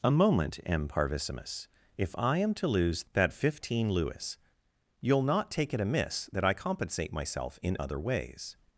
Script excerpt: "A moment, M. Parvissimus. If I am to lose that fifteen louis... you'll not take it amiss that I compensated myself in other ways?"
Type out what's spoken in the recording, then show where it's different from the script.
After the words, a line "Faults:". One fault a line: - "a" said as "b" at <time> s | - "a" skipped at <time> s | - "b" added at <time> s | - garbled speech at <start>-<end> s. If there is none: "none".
"A moment, M. Parvissimus. If I am to lose that fifteen louis... you'll not take it amiss that I compensate myself in other ways?"
Faults:
- "compensated" said as "compensate" at 6.5 s